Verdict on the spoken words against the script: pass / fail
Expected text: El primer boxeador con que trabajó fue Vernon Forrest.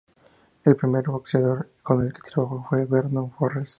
fail